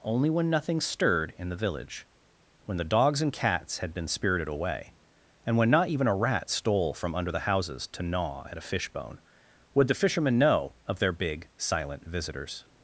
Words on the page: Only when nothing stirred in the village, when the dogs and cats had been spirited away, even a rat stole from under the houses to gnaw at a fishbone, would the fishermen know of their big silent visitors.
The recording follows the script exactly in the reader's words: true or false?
false